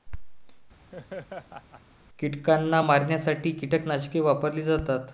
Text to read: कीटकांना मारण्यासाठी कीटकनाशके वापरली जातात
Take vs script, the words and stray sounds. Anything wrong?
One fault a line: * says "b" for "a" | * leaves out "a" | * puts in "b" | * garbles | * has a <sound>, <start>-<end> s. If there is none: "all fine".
* has a laugh, 0.9-1.8 s